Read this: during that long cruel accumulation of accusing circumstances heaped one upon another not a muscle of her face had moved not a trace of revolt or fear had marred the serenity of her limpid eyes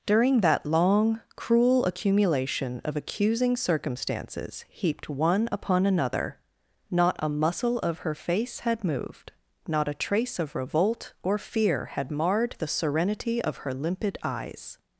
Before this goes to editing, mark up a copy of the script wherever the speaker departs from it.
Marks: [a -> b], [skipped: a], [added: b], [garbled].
during that long cruel accumulation of accusing circumstances heaped one upon another not a muscle of her face had moved not a trace of revolt or fear had marred the serenity of her limpid eyes